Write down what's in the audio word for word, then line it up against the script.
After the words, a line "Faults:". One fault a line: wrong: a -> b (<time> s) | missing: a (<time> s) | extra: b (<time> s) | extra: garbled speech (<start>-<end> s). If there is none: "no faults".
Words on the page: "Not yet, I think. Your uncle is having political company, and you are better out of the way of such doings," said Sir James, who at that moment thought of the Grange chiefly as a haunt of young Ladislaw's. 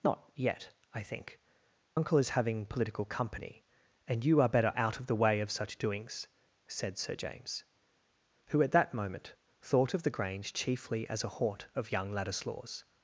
"Not yet, I think. Uncle is having political company, and you are better out of the way of such doings," said Sir James, who at that moment thought of the Grange chiefly as a haunt of young Ladislaw's.
Faults:
missing: Your (1.4 s)